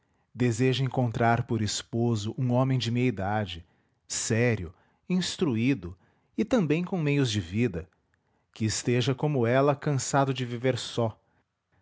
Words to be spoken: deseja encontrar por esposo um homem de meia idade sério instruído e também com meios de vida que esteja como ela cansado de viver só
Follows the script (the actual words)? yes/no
yes